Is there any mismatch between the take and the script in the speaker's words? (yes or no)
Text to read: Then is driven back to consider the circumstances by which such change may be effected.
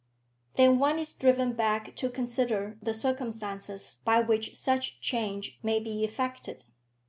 yes